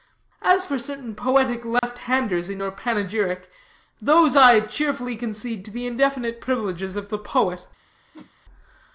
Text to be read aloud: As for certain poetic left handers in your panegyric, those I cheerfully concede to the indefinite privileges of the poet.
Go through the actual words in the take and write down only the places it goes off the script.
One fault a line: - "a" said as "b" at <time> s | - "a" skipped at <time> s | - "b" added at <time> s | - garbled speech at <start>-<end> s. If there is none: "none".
none